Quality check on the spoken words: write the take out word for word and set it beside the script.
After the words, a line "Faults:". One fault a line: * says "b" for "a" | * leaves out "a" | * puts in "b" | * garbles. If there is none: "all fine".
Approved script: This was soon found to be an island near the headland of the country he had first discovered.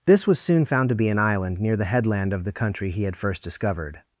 This was soon found to be an island near the headland of the country he had first discovered.
Faults:
all fine